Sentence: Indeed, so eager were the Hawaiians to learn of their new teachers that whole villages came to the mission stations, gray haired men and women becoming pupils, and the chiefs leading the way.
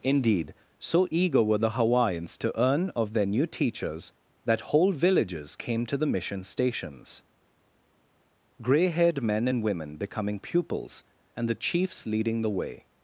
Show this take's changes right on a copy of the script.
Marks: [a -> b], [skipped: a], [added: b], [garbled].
Indeed, so eager were the Hawaiians to [learn -> earn] of their new teachers that whole villages came to the mission stations, gray haired men and women becoming pupils, and the chiefs leading the way.